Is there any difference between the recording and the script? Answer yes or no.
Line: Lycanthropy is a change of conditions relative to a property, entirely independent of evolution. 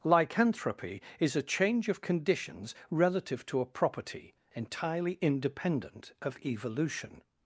no